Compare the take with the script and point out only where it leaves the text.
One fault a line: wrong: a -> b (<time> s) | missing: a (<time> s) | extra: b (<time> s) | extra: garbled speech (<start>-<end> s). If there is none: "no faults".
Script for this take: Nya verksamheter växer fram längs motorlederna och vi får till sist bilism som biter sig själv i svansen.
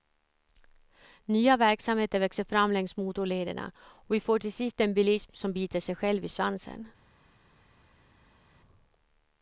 extra: en (4.8 s)